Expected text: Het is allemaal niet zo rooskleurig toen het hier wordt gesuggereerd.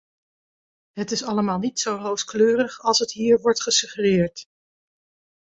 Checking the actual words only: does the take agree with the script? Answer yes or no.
no